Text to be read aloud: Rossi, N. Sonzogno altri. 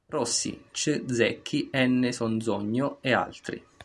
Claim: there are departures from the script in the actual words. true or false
true